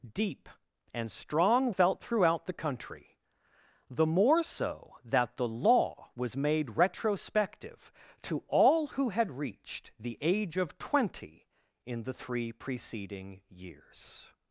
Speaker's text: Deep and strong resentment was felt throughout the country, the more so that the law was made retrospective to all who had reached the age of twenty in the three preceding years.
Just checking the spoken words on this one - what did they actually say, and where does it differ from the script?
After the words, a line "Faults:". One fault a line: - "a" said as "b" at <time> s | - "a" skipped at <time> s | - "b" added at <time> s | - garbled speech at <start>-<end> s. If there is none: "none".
Deep and strong felt throughout the country, the more so that the law was made retrospective to all who had reached the age of twenty in the three preceding years.
Faults:
- "resentment was" skipped at 1.7 s